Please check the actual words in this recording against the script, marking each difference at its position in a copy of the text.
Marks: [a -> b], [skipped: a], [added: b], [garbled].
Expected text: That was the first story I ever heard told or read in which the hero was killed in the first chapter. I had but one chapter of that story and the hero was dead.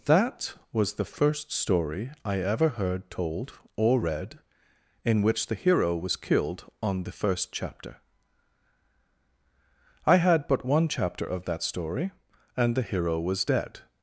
That was the first story I ever heard told or read in which the hero was killed [in -> on] the first chapter. I had but one chapter of that story and the hero was dead.